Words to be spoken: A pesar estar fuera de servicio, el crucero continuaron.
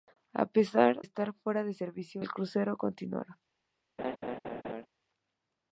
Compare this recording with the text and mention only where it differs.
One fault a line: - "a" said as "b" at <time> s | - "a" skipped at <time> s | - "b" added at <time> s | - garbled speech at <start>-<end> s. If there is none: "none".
none